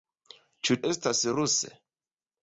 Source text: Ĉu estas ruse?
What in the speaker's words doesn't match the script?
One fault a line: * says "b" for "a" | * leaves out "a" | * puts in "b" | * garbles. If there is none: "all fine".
all fine